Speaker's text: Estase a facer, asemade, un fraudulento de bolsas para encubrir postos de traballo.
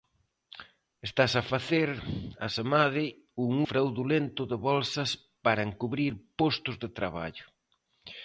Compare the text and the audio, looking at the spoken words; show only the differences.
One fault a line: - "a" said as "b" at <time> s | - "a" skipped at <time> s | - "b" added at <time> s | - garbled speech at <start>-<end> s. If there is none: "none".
none